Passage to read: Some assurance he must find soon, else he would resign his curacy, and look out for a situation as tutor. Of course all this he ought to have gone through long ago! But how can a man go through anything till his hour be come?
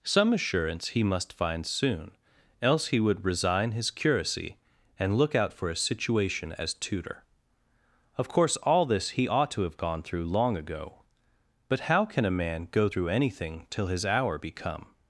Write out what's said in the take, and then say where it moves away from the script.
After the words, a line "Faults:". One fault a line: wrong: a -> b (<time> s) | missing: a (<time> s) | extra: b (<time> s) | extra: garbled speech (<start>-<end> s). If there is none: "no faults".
Some assurance he must find soon, else he would resign his curacy, and look out for a situation as tutor. Of course all this he ought to have gone through long ago! But how can a man go through anything till his hour be come?
Faults:
no faults